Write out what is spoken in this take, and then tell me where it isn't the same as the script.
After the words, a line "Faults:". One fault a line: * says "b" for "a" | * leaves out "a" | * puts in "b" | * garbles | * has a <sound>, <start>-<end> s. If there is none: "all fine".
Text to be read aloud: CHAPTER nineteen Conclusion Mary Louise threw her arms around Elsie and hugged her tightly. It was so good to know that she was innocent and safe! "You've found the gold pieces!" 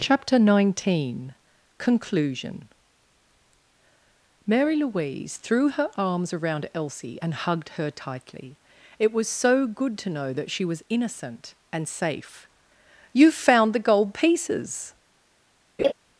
CHAPTER nineteen Conclusion Mary Louise threw her arms around Elsie and hugged her tightly. It was so good to know that she was innocent and safe! "You've found the gold pieces!"
Faults:
* has a laugh, 15.8-15.9 s